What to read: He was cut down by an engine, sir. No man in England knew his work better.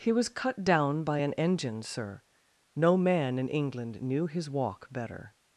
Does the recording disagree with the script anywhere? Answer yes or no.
yes